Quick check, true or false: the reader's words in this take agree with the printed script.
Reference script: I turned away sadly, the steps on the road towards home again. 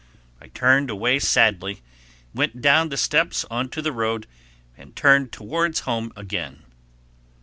false